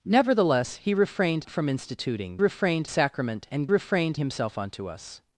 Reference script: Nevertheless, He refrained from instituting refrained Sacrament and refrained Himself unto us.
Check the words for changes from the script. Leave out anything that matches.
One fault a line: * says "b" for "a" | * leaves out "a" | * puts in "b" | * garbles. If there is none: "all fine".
all fine